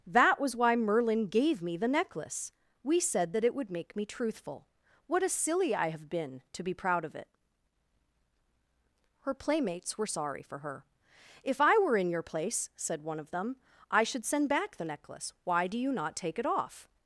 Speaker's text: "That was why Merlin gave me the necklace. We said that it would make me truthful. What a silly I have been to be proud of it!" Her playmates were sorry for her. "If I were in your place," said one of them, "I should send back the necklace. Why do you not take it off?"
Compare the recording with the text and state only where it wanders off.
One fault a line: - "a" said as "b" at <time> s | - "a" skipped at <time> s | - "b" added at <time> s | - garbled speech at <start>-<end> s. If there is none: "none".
none